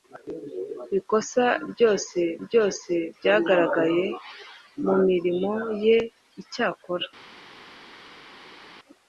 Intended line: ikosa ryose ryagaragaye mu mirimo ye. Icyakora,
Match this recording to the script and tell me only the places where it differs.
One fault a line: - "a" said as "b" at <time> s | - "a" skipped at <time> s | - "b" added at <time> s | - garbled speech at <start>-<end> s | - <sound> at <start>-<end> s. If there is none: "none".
- "ryose" added at 2.4 s